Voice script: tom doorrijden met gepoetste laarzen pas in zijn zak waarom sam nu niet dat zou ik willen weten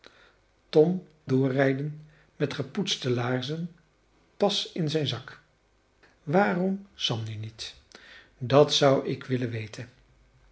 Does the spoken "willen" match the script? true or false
true